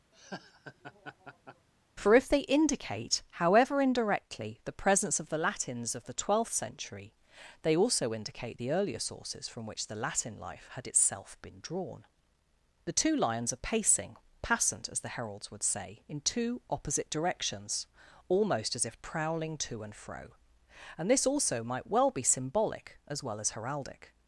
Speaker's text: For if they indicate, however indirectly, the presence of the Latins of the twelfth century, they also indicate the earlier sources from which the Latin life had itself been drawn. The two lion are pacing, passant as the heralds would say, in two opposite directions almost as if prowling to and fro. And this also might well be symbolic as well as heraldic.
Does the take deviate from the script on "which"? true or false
false